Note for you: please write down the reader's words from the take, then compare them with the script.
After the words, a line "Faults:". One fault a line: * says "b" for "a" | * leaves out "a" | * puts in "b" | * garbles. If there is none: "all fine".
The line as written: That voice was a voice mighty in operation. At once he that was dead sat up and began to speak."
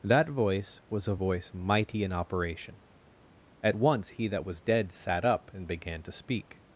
That voice was a voice mighty in operation. At once he that was dead sat up and began to speak."
Faults:
all fine